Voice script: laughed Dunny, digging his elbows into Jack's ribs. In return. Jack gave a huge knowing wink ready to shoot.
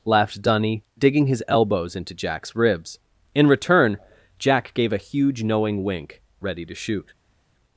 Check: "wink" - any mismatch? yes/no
no